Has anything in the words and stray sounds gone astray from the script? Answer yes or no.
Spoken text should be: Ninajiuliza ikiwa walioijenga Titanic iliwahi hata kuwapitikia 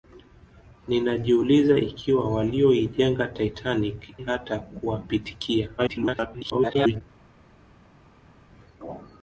yes